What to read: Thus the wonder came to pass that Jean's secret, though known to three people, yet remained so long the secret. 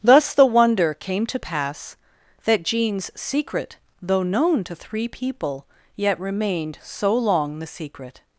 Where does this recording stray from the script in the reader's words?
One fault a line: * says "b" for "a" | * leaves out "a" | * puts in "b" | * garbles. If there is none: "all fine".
all fine